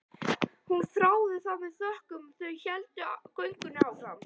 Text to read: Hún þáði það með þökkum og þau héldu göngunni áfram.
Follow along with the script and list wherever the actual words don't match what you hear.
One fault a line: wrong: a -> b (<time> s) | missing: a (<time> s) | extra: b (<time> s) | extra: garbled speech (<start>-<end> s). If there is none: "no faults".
no faults